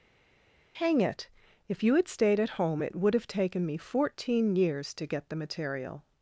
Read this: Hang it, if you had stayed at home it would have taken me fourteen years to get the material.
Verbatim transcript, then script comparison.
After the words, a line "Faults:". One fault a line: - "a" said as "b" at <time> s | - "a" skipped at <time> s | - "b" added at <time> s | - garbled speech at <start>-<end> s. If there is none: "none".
Hang it, if you had stayed at home it would have taken me fourteen years to get the material.
Faults:
none